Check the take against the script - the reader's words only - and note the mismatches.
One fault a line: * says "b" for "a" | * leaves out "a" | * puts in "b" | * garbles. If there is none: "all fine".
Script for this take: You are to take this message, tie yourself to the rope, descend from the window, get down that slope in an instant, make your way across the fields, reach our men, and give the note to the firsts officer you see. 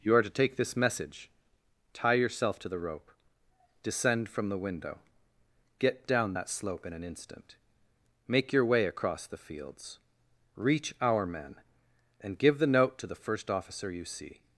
* says "first" for "firsts"